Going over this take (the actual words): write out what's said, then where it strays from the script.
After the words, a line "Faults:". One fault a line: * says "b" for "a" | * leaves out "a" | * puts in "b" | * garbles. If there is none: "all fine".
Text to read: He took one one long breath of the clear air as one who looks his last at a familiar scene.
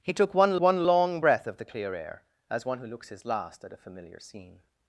He took one one long breath of the clear air as one who looks his last at a familiar scene.
Faults:
all fine